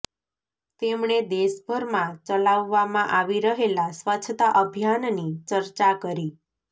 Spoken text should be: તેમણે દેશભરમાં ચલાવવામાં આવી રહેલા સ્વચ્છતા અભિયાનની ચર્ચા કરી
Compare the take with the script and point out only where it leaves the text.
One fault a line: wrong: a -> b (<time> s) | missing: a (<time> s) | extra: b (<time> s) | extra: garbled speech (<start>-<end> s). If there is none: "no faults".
no faults